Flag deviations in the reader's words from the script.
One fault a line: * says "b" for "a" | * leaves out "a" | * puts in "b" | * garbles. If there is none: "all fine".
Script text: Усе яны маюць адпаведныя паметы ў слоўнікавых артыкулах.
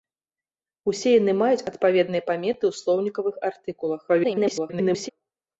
* garbles